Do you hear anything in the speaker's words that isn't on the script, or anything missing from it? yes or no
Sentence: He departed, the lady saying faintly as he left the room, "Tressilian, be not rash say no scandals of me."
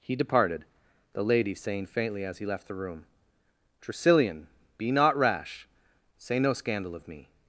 yes